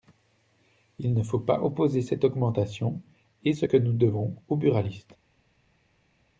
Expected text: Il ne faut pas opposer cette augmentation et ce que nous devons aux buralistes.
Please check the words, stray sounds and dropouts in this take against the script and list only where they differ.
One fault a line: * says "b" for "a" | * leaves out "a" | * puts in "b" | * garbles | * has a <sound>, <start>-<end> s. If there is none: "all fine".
all fine